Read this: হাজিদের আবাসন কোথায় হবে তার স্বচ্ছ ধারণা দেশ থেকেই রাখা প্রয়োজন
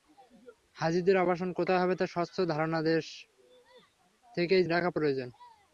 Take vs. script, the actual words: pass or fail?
pass